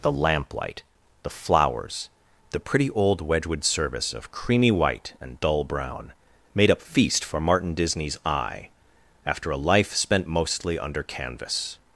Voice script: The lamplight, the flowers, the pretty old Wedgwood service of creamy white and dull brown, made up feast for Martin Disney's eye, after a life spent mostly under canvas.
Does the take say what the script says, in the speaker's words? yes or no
yes